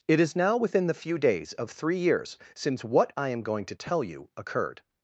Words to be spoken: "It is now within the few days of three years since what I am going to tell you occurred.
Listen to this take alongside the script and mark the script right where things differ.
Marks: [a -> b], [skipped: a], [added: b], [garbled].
"It is now within the few days of three years since what I am going to tell you occurred.